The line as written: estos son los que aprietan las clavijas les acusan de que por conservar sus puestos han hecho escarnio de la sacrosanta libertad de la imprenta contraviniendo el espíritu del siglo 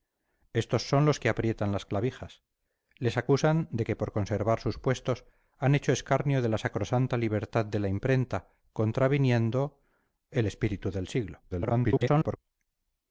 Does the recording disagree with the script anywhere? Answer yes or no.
yes